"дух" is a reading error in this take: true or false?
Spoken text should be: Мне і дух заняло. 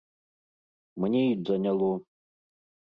true